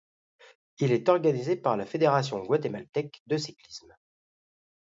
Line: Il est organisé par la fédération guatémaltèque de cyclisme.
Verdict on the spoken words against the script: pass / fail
pass